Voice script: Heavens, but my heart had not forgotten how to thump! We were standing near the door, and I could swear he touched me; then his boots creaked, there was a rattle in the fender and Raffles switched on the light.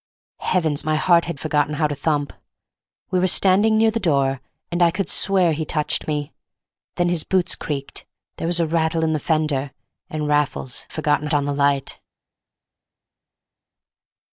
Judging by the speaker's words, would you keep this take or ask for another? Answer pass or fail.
fail